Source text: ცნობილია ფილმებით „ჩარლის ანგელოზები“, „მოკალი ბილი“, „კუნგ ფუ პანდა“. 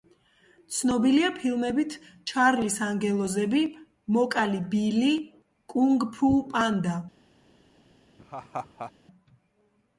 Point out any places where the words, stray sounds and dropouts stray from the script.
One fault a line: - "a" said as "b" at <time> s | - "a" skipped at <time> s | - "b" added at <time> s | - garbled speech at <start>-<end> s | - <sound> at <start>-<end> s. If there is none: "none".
- laugh at 8.2-8.9 s